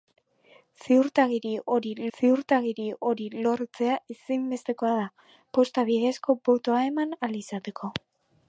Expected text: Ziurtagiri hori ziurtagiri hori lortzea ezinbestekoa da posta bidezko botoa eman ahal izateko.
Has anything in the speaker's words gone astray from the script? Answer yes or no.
no